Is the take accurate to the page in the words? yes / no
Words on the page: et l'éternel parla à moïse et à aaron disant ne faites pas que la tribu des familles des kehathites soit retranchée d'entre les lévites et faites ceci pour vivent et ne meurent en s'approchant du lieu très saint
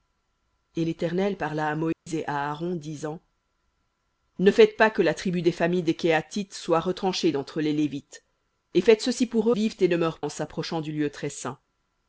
yes